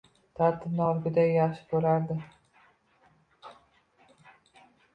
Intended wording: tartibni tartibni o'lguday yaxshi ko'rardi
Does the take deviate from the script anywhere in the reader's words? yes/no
yes